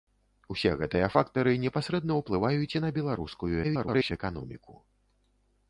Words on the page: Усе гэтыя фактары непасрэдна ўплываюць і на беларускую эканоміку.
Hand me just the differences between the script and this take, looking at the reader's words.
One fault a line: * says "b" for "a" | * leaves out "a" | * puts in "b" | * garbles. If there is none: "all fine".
* garbles